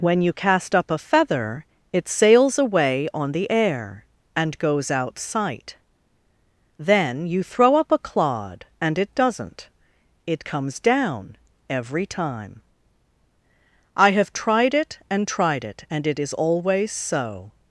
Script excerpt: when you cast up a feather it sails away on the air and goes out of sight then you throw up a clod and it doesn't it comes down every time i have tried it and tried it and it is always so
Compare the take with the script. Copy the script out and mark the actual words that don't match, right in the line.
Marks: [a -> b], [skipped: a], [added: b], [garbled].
when you cast up a feather it sails away on the air and goes out [skipped: of] sight then you throw up a clod and it doesn't it comes down every time i have tried it and tried it and it is always so